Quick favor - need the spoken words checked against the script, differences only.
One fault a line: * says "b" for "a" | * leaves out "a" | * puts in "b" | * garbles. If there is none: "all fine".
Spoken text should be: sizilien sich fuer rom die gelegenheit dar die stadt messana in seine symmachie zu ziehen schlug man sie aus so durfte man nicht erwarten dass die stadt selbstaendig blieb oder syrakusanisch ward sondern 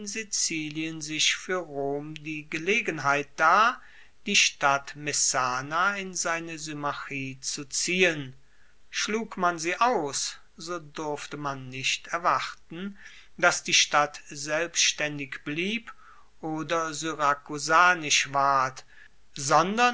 all fine